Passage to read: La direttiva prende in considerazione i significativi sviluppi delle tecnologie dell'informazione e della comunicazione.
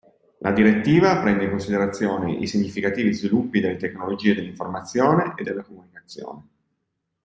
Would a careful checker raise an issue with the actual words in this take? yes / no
no